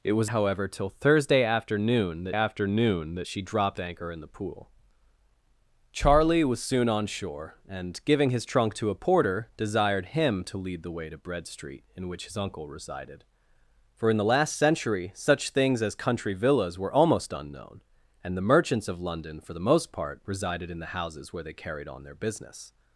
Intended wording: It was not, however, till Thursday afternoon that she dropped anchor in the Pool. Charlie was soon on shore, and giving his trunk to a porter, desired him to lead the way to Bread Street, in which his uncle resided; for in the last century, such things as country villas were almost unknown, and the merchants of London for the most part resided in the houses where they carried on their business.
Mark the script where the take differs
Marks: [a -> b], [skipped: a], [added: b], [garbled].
It was [skipped: not,] however, till Thursday afternoon that [added: afternoon that] she dropped anchor in the Pool. Charlie was soon on shore, and giving his trunk to a porter, desired him to lead the way to Bread Street, in which his uncle resided; for in the last century, such things as country villas were almost unknown, and the merchants of London for the most part resided in the houses where they carried on their business.